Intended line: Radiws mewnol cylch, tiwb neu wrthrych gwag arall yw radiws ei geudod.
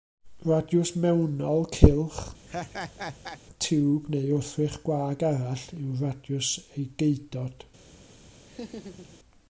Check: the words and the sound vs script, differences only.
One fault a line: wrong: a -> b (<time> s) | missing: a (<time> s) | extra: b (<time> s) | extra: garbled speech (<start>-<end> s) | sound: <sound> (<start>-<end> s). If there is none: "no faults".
sound: laugh (2.5-3.4 s)
sound: laugh (8.5-9.2 s)